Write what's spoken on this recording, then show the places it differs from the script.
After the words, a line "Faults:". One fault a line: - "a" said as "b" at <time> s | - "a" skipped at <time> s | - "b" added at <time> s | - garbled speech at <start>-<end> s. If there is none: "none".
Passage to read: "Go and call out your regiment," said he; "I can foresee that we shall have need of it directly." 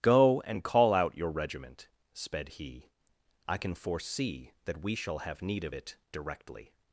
"Go and call out your regiment," sped he; "I can foresee that we shall have need of it directly."
Faults:
- "said" said as "sped" at 2.1 s